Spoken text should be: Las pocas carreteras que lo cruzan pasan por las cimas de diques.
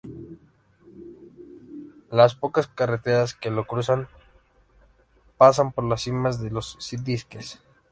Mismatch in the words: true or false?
true